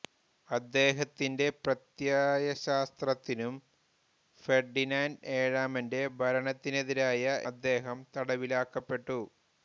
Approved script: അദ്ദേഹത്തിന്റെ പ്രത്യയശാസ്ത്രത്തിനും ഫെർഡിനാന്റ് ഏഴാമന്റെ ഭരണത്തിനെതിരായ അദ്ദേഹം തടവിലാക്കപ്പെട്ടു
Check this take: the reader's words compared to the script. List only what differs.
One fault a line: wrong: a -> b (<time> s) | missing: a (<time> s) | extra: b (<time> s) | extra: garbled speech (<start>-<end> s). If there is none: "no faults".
no faults